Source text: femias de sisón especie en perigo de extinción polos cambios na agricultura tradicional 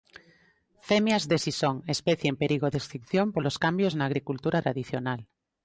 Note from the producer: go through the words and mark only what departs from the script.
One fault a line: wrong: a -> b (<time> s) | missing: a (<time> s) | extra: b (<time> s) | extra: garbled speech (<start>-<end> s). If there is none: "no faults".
no faults